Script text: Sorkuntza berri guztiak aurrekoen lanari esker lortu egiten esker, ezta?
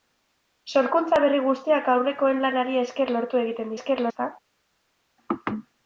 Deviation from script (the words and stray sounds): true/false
false